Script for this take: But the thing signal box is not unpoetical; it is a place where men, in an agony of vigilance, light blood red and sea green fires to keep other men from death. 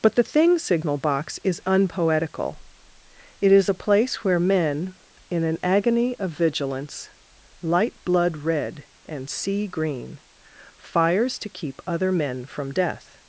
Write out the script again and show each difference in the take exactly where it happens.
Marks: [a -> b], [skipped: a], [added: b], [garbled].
But the thing signal box is [skipped: not] unpoetical; it is a place where men, in an agony of vigilance, light blood red and sea green fires to keep other men from death.